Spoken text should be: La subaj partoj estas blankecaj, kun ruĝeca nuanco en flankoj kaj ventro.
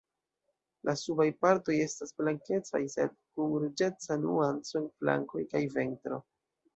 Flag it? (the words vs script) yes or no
yes